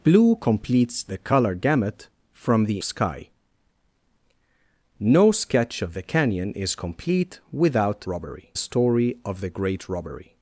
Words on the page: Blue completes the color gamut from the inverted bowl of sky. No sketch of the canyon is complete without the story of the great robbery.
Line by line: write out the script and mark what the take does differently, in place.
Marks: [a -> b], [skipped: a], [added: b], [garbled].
Blue completes the color gamut from the [skipped: inverted bowl of] sky. No sketch of the canyon is complete without [the -> robbery] story of the great robbery.